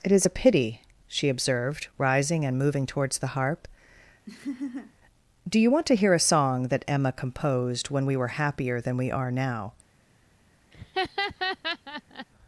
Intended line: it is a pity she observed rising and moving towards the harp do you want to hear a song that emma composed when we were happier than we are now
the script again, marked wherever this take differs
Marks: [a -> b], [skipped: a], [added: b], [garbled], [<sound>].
it is a pity she observed rising and moving towards the harp [laugh] do you want to hear a song that emma composed when we were happier than we are now [laugh]